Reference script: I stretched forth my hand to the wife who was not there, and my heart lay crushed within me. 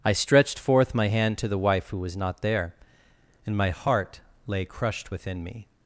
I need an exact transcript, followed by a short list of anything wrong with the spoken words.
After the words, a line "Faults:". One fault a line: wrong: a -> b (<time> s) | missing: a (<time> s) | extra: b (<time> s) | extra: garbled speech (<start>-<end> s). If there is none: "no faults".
I stretched forth my hand to the wife who was not there, and my heart lay crushed within me.
Faults:
no faults